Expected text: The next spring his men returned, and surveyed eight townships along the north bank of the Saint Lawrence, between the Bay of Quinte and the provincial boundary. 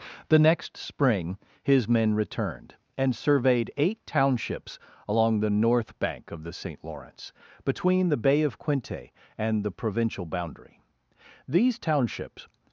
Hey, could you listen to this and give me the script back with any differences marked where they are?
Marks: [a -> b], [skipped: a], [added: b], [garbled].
The next spring his men returned, and surveyed eight townships along the north bank of the Saint Lawrence, between the Bay of Quinte and the provincial boundary. [added: These townships]